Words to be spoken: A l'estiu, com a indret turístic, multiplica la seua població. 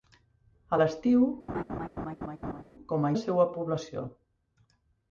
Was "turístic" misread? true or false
true